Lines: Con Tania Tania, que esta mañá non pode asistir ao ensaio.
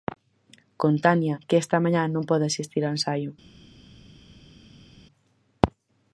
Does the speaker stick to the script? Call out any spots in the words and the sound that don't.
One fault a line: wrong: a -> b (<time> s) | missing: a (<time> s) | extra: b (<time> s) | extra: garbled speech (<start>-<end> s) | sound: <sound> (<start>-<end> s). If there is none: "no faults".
missing: Tania (1.4 s)